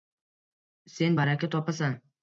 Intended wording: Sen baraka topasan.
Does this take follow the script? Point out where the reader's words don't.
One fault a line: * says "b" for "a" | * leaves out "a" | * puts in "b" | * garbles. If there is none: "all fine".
all fine